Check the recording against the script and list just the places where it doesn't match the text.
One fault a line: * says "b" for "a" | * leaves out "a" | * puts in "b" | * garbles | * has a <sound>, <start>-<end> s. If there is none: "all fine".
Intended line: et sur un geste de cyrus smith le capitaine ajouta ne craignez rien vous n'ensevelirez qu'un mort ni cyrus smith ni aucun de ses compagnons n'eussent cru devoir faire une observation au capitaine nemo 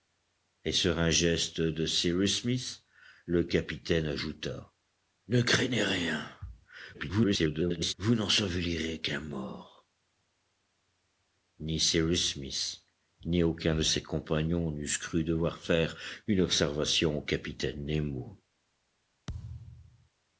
* garbles
* has a thud, 19.3-20.1 s